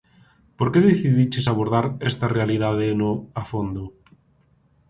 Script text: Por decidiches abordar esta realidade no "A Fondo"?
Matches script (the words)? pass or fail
fail